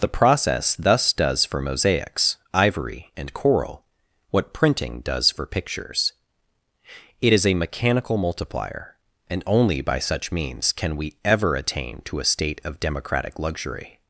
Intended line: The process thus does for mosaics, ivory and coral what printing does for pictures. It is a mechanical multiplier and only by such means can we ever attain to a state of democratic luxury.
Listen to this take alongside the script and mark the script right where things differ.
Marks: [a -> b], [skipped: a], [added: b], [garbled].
The process thus does for mosaics, ivory and coral what printing does for pictures. It is a mechanical multiplier and only by such means can we ever attain to a state of democratic luxury.